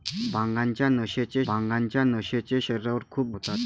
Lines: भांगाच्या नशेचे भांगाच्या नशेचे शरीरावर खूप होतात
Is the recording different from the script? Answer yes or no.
no